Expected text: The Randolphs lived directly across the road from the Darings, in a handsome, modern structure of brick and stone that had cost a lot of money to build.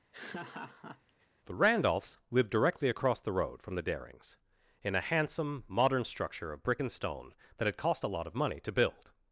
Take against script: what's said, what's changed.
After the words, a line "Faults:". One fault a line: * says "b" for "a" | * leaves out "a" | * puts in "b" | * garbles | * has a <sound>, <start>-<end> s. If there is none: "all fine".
The Randolphs lived directly across the road from the Darings, in a handsome, modern structure of brick and stone that had cost a lot of money to build.
Faults:
* has a laugh, 0.1-1.3 s